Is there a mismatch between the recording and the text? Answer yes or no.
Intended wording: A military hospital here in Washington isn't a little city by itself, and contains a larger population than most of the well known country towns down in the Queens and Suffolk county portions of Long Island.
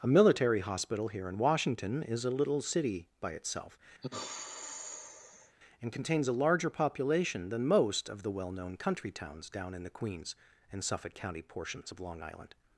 yes